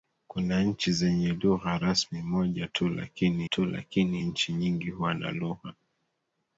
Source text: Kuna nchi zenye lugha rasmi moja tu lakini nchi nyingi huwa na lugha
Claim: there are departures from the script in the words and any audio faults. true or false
true